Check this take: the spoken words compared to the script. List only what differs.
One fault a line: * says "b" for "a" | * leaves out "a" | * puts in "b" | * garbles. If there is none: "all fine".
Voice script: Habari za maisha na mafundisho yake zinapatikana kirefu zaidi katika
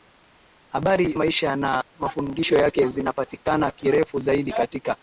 * leaves out "za"